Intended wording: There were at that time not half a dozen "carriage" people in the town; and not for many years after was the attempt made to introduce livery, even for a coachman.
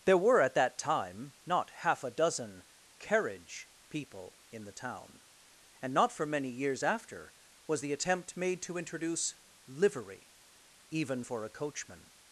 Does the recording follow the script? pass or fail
pass